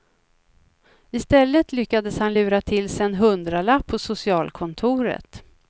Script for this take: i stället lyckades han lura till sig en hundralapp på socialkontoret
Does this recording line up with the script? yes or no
yes